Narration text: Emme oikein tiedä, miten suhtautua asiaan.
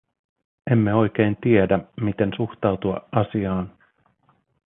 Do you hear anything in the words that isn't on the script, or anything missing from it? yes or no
no